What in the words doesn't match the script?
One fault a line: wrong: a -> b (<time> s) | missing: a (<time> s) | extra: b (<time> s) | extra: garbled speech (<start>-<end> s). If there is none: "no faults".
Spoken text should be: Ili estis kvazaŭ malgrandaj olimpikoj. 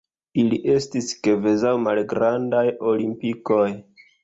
no faults